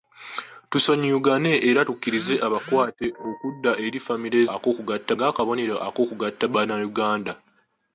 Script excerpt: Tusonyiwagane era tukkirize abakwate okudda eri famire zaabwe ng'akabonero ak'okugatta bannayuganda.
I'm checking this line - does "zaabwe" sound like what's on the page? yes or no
no